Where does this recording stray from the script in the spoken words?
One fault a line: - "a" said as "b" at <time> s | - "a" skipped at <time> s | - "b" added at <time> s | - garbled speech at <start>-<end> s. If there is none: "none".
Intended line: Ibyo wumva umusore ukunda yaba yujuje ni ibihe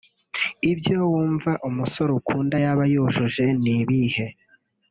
none